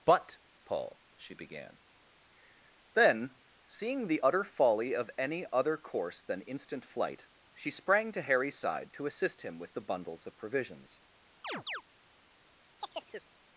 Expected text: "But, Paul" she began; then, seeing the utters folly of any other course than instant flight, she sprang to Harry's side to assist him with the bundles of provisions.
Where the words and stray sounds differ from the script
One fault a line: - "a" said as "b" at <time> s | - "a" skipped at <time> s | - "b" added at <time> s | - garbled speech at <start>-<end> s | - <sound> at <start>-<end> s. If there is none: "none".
- "utters" said as "utter" at 4.2 s
- chirp at 11.4-11.8 s
- chirp at 12.8-13.3 s